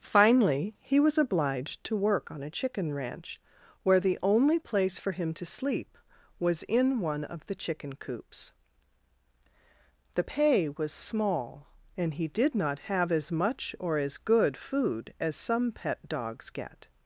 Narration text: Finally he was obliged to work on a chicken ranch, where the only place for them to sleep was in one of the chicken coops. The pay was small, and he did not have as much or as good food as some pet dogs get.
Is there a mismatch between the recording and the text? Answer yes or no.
yes